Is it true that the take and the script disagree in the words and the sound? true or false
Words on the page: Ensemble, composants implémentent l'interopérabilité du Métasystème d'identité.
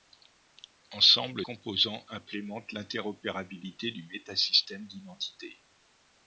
false